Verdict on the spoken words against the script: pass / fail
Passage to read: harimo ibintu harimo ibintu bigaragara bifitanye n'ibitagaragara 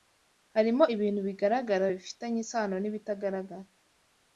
fail